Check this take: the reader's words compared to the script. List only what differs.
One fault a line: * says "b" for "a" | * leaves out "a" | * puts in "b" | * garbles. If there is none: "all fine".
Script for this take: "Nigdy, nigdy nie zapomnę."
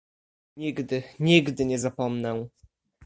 all fine